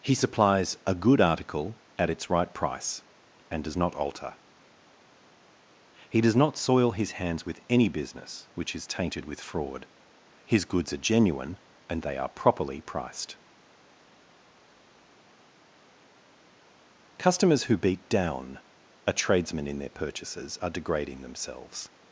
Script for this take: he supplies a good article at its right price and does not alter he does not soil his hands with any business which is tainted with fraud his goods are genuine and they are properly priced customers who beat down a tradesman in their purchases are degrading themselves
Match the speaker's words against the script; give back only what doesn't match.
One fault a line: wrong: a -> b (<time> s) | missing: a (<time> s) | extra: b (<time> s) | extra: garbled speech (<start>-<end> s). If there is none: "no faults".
no faults